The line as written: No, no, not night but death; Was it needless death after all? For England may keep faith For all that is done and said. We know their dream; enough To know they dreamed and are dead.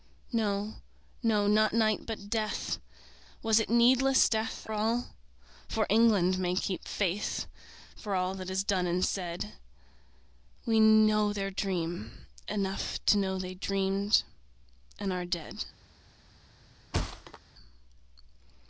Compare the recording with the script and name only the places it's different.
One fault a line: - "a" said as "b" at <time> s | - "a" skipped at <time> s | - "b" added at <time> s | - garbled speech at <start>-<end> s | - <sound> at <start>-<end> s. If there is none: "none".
- "after" skipped at 4.7 s
- thud at 16.9-17.4 s